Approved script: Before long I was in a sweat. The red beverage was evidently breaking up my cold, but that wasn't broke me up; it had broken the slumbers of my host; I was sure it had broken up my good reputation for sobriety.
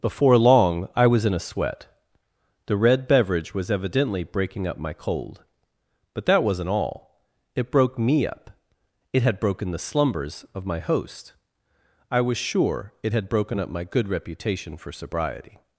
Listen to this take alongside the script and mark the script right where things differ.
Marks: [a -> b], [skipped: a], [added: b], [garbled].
Before long I was in a sweat. The red beverage was evidently breaking up my cold, but that wasn't [added: all It] broke me up; it had broken the slumbers of my host; I was sure it had broken up my good reputation for sobriety.